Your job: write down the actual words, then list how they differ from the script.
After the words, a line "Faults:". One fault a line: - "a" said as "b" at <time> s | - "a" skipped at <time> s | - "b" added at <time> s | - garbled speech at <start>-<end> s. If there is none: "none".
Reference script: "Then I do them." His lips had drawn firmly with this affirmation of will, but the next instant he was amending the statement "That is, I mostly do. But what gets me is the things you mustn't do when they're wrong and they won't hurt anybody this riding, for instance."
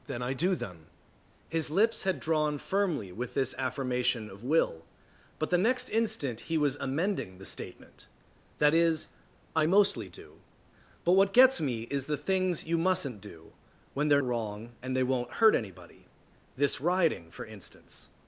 "Then I do them." His lips had drawn firmly with this affirmation of will, but the next instant he was amending the statement "That is, I mostly do. But what gets me is the things you mustn't do when they're wrong and they won't hurt anybody this riding, for instance."
Faults:
none